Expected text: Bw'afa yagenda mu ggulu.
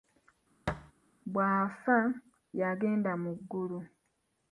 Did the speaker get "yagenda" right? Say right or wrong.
right